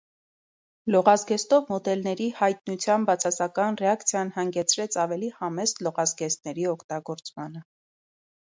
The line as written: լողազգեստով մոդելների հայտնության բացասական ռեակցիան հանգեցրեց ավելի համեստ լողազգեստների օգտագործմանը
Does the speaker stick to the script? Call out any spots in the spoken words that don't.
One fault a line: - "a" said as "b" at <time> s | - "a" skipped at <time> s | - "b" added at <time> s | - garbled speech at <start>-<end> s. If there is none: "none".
none